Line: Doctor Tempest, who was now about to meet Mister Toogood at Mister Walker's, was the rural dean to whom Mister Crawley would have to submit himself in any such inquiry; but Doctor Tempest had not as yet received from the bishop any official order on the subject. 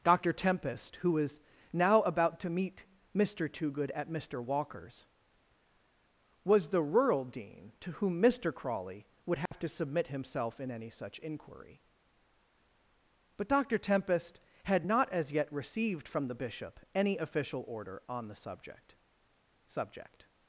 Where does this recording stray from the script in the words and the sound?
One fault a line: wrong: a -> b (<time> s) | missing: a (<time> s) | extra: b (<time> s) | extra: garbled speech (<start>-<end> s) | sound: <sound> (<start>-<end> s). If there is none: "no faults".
sound: dropout (9.5-9.5 s)
extra: subject (19.7 s)